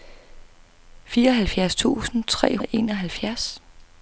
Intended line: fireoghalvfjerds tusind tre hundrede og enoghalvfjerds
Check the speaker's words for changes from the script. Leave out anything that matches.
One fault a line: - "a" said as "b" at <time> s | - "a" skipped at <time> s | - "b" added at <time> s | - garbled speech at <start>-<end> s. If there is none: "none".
- "hundrede" skipped at 2.6 s